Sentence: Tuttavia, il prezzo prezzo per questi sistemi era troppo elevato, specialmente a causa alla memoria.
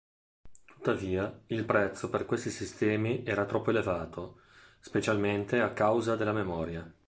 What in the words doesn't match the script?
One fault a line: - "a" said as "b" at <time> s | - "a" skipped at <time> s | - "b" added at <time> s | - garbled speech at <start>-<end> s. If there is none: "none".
- "prezzo" skipped at 2.1 s
- "alla" said as "della" at 6.2 s